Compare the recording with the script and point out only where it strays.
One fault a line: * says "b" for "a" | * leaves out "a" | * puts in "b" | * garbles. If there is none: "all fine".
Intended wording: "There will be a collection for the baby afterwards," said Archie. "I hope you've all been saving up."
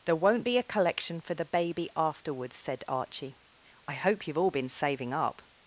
* says "won't" for "will"